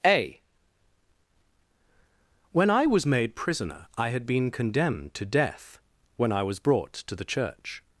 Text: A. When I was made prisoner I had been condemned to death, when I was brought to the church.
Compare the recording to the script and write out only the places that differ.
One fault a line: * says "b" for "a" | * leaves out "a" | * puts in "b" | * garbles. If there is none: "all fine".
all fine